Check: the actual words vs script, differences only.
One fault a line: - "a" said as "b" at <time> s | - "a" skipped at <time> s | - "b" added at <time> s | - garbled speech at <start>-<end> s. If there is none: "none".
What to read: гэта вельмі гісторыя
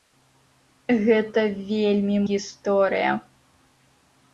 none